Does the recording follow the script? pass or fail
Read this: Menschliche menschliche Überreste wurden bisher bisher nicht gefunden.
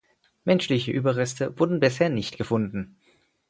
fail